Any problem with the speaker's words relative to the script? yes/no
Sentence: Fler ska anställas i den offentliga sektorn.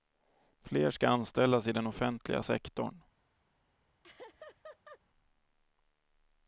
no